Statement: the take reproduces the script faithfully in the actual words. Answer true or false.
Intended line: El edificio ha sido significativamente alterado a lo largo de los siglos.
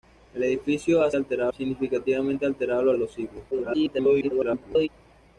false